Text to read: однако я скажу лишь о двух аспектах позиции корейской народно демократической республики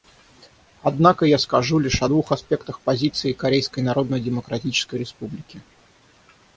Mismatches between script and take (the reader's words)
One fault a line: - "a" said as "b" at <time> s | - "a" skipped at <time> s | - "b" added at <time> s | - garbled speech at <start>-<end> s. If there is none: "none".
none